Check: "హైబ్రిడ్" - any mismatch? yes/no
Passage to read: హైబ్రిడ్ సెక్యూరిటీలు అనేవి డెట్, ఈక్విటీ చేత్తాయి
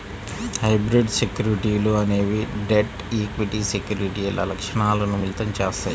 no